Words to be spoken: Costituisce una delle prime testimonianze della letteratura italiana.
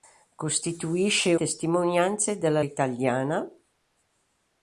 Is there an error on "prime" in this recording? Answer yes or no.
yes